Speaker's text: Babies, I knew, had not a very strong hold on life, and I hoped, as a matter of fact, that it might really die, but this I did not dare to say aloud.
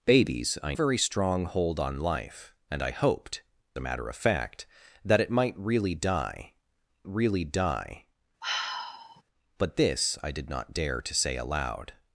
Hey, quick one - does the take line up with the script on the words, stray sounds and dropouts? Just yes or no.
no